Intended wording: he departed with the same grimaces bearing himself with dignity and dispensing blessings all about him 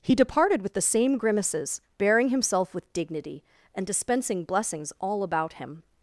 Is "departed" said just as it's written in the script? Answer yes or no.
yes